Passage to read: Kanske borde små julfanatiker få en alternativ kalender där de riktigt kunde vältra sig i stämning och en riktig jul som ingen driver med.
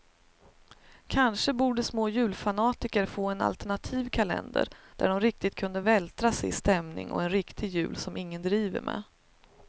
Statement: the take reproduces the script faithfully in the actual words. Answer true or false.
true